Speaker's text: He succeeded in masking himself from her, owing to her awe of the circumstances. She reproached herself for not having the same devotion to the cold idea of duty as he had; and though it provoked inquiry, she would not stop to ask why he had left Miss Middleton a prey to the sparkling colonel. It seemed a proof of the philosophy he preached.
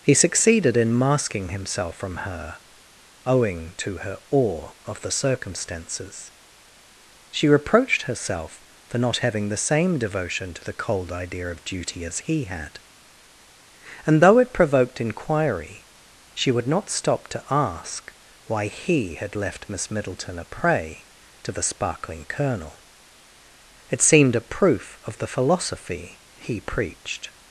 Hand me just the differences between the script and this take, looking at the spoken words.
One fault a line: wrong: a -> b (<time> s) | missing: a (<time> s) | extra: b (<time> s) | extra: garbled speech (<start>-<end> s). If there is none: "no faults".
no faults